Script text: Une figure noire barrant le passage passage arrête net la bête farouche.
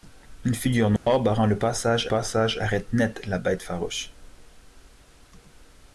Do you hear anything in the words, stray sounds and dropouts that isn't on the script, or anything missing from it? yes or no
yes